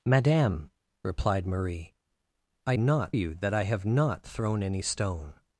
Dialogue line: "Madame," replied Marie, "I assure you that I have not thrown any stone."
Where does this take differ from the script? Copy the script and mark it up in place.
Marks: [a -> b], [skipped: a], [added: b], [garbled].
"Madame," replied Marie, "I [assure -> not] you that I have not thrown any stone."